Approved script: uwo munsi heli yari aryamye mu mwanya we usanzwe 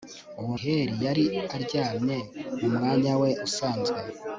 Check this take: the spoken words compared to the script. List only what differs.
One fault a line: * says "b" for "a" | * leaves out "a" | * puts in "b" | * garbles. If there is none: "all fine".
* leaves out "munsi"